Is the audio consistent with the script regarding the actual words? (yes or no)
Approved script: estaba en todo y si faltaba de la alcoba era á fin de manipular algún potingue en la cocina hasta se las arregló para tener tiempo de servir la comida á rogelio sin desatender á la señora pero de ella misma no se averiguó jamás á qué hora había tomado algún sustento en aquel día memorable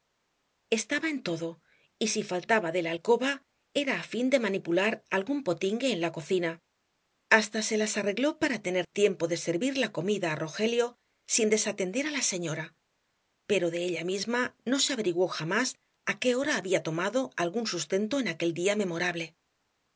yes